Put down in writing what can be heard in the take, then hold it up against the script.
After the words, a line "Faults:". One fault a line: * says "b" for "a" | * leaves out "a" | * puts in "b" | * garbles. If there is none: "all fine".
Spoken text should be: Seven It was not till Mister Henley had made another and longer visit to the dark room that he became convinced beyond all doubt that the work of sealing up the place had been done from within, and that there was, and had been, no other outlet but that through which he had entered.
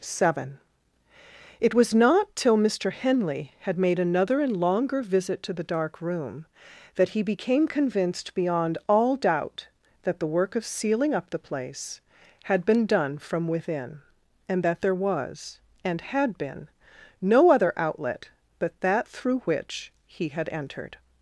Seven It was not till Mister Henley had made another and longer visit to the dark room that he became convinced beyond all doubt that the work of sealing up the place had been done from within, and that there was, and had been, no other outlet but that through which he had entered.
Faults:
all fine